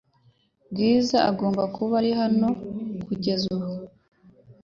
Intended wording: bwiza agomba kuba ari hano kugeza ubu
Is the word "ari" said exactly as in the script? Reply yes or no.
yes